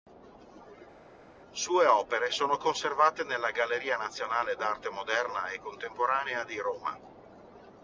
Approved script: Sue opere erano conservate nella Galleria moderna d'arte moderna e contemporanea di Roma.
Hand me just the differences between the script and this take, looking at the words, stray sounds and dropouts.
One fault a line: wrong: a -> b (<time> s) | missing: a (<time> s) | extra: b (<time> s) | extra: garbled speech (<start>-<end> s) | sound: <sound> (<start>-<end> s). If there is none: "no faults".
wrong: erano -> sono (2.3 s)
wrong: moderna -> nazionale (4.0 s)